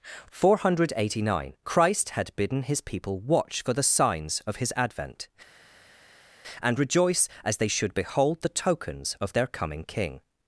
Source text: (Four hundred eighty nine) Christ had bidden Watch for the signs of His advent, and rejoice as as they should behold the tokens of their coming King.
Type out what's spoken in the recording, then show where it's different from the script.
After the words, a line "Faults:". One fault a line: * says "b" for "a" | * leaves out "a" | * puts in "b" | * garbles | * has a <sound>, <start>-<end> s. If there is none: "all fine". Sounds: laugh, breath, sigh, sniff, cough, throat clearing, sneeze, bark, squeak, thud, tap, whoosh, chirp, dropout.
(Four hundred eighty nine) Christ had bidden His people watch for the signs of His advent, and rejoice as they should behold the tokens of their coming King.
Faults:
* puts in "His people"
* leaves out "as"